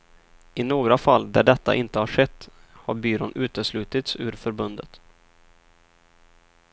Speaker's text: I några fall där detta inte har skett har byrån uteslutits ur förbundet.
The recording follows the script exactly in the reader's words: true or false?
true